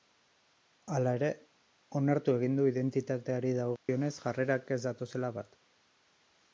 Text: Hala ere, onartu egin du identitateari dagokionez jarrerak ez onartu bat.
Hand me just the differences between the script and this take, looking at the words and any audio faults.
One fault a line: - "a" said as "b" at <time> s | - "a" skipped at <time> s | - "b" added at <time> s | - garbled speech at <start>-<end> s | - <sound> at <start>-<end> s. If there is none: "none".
- dropout at 3.8-3.9 s
- "onartu" said as "datozela" at 4.9 s